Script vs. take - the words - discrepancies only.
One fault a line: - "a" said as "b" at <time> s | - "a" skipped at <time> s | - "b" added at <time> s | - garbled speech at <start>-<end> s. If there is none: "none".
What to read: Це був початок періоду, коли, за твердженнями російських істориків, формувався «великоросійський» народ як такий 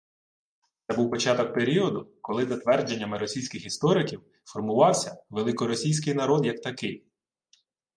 none